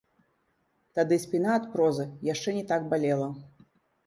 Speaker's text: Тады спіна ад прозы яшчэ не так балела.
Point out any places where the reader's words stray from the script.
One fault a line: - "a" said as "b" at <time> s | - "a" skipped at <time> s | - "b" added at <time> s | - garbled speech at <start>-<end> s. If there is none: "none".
none